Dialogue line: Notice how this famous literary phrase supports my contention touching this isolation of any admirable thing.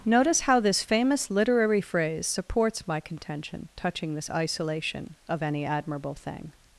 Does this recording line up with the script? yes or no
yes